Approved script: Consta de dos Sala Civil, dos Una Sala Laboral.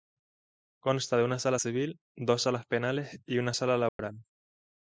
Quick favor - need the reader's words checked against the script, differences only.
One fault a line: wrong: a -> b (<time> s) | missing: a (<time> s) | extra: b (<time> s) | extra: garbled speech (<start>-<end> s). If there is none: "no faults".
wrong: dos -> una (1.2 s)
extra: Salas Penales y (2.4 s)